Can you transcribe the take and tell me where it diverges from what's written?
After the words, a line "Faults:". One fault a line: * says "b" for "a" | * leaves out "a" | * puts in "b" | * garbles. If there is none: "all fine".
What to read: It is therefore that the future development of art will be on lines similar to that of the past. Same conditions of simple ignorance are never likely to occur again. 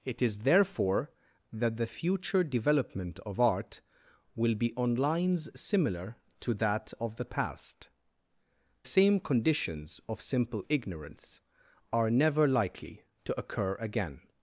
It is therefore that the future development of art will be on lines similar to that of the past. Same conditions of simple ignorance are never likely to occur again.
Faults:
all fine